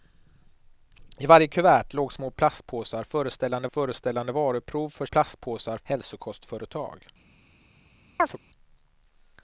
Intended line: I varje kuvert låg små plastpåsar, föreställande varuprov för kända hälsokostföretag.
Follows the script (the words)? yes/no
no